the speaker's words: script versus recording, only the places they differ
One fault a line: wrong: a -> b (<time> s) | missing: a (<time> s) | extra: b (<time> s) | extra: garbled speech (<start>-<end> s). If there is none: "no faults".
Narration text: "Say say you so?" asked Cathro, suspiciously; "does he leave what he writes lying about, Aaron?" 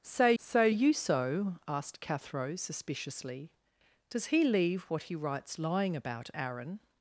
no faults